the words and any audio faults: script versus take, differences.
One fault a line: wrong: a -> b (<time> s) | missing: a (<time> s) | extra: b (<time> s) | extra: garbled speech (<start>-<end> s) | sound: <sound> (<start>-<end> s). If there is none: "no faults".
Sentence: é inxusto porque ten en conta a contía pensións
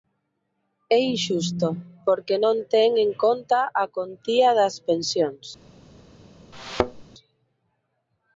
extra: non (2.4 s)
extra: das (4.6 s)
sound: thud (6.5-7.0 s)